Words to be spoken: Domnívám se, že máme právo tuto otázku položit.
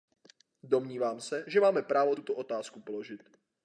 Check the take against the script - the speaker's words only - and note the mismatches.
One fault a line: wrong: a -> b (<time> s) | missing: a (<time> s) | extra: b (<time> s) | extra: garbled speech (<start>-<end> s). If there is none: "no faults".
no faults